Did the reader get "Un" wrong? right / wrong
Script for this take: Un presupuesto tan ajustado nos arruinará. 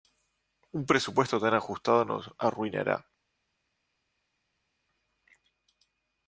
right